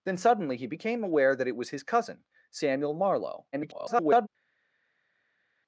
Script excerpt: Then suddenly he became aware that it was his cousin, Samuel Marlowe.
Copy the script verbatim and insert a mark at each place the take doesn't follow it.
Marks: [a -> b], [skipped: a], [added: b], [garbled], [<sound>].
Then suddenly he became aware that it was his cousin, Samuel Marlowe. [garbled]